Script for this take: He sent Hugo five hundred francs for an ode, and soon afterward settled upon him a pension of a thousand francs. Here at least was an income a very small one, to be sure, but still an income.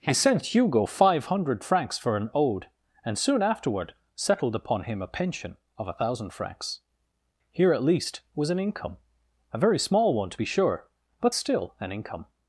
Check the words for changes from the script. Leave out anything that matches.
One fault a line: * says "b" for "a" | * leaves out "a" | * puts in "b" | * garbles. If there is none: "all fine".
all fine